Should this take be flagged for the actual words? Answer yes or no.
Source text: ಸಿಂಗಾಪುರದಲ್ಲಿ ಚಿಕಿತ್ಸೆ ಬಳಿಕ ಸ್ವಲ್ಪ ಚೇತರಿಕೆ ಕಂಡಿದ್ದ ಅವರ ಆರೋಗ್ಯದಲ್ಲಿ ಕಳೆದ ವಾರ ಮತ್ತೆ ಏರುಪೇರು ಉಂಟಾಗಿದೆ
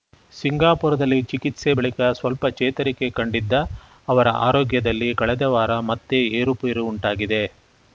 no